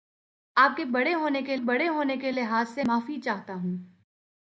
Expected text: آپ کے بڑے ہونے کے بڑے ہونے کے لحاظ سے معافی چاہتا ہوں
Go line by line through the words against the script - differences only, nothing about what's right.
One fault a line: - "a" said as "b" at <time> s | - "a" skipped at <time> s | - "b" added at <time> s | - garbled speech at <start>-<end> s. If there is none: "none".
none